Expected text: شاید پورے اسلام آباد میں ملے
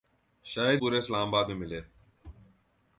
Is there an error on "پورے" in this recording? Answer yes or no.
no